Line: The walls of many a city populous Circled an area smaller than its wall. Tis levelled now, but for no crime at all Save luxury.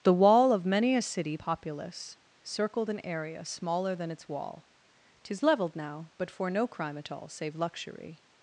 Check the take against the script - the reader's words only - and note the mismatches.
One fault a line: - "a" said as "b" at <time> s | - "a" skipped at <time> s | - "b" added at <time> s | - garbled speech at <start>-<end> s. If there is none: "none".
- "walls" said as "wall" at 0.1 s